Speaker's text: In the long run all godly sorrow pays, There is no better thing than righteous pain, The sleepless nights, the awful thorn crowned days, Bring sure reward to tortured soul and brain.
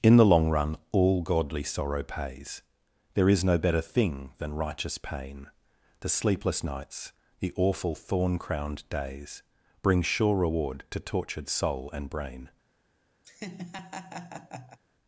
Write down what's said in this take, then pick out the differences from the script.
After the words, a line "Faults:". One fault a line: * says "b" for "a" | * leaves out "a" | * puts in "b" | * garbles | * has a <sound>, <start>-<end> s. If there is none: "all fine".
In the long run all godly sorrow pays, There is no better thing than righteous pain, The sleepless nights, the awful thorn crowned days, Bring sure reward to tortured soul and brain.
Faults:
* has a laugh, 13.2-14.8 s